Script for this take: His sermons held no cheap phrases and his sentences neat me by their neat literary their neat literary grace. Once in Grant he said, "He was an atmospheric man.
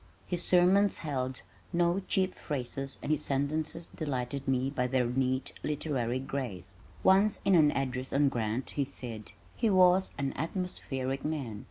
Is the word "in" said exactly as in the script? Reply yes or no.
no